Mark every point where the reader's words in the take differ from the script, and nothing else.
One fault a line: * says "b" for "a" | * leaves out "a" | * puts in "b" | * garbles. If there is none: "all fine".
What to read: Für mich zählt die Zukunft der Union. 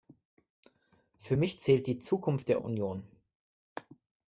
all fine